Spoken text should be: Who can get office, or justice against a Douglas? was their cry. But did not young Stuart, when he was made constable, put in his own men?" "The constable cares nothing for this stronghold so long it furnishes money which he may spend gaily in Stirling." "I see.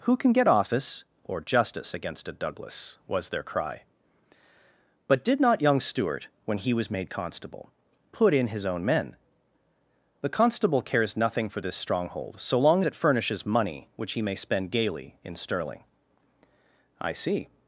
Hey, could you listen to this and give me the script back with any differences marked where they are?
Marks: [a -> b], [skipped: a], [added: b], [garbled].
Who can get office, or justice against a Douglas? was their cry. But did not young Stuart, when he was made constable, put in his own men?" "The constable cares nothing for this stronghold so long it furnishes money which he may spend gaily in Stirling." "I see.